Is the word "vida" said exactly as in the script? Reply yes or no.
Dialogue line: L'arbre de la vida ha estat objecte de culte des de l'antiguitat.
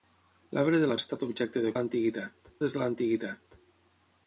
no